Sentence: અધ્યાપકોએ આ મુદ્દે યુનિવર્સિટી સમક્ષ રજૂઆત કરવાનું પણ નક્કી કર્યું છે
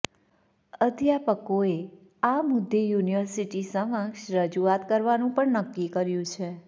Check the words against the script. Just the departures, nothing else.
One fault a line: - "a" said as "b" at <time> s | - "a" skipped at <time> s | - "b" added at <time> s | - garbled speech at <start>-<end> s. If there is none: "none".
none